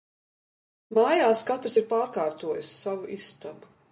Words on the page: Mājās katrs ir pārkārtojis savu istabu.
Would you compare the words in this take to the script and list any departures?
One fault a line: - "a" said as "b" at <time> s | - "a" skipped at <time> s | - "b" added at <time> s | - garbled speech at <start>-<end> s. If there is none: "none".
none